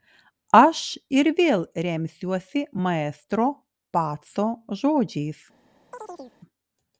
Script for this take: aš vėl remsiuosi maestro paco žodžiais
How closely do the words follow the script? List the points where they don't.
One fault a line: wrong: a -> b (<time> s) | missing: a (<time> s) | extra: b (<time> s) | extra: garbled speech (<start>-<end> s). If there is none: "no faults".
extra: ir (1.2 s)